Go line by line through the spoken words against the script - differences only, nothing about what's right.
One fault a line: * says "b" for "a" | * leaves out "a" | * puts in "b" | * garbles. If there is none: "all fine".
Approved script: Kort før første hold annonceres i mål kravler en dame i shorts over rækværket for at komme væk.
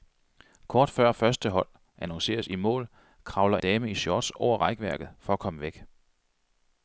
* leaves out "en"